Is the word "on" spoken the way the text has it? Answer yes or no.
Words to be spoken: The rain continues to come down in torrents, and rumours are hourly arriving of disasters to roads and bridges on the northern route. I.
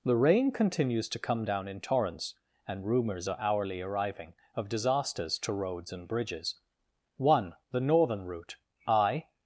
no